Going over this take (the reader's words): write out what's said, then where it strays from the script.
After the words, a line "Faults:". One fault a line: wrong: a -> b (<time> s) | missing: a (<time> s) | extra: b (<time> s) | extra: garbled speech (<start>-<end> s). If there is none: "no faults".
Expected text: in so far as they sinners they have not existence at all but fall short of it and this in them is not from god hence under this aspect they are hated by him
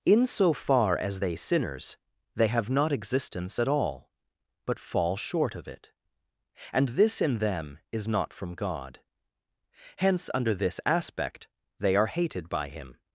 in so far as they sinners they have not existence at all but fall short of it and this in them is not from god hence under this aspect they are hated by him
Faults:
no faults